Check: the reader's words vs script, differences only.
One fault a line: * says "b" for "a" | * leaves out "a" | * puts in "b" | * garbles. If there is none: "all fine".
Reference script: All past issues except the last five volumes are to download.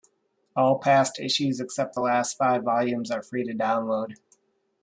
* puts in "free"